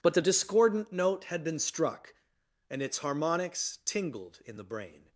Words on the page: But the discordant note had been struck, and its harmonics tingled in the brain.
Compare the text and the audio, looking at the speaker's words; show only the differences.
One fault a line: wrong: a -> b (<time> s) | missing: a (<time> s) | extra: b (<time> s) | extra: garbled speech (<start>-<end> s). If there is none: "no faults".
no faults